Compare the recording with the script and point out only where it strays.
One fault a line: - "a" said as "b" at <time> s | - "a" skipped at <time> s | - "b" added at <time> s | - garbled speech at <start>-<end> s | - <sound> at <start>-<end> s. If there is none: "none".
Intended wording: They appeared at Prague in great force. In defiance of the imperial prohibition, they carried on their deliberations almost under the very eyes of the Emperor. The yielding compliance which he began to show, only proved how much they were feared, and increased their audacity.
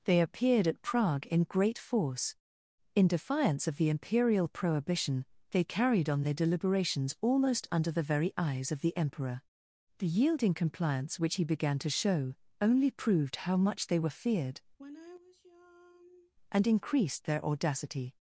- sigh at 14.8-16.3 s